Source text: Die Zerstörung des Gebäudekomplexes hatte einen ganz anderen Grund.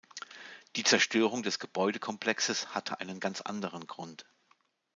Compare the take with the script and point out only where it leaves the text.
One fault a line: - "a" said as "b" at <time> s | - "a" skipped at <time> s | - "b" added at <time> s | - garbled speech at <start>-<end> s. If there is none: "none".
none